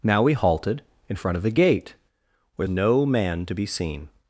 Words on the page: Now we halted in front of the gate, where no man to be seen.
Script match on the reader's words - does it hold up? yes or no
yes